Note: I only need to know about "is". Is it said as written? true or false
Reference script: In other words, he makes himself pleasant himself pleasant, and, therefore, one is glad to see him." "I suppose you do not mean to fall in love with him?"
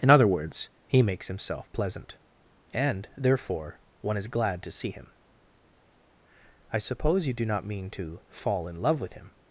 true